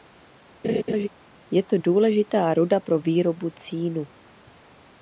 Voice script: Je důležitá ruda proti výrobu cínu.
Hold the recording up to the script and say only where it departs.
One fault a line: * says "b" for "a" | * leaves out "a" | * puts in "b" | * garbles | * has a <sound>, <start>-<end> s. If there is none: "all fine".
* has a laugh, 0.6-1.1 s
* puts in "to"
* says "pro" for "proti"